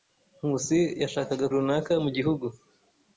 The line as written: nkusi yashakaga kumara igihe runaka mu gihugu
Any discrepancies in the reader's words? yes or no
yes